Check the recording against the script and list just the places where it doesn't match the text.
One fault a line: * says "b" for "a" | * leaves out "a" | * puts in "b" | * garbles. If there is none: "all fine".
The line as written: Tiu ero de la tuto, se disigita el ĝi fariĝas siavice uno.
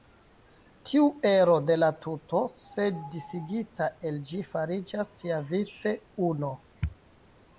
all fine